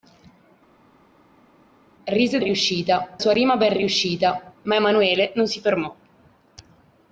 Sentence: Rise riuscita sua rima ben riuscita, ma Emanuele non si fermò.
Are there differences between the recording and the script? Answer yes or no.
no